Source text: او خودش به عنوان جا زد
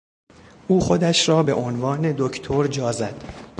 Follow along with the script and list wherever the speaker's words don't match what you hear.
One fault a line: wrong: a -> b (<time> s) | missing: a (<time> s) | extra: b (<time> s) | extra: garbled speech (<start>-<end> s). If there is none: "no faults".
extra: را (1.3 s)
extra: دکتر (2.2 s)